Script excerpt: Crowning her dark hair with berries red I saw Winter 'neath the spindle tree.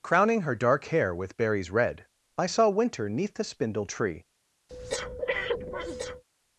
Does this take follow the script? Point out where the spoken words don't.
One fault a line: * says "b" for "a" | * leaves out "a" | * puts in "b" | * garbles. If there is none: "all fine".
all fine